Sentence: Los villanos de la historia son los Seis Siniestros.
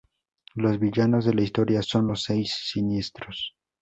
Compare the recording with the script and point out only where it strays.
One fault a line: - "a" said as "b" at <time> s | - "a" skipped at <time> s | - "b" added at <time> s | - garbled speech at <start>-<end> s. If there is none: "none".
none